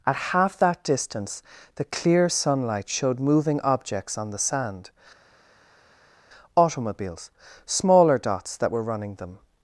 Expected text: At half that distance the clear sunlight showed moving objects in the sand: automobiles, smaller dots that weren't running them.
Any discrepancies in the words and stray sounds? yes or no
yes